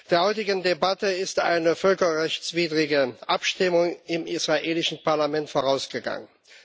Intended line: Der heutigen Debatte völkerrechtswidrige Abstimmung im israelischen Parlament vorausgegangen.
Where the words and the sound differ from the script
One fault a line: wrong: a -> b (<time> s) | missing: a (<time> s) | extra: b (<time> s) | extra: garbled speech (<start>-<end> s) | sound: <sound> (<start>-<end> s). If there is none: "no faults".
extra: ist eine (1.1 s)